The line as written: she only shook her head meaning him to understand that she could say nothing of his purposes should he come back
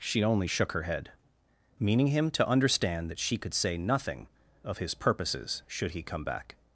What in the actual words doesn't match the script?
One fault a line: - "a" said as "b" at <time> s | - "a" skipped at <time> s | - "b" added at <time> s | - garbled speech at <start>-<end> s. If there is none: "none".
none